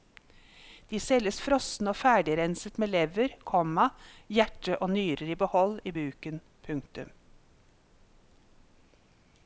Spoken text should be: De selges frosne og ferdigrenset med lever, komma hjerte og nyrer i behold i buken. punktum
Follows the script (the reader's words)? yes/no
yes